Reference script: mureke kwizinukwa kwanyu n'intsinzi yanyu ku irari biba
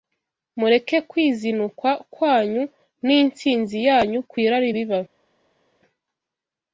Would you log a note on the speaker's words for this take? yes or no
no